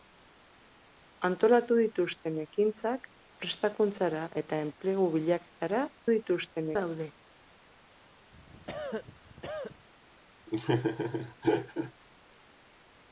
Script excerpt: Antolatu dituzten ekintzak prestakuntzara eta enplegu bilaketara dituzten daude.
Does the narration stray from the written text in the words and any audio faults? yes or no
yes